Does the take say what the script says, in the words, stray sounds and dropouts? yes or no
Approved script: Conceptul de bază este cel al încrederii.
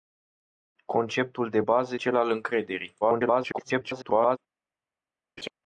no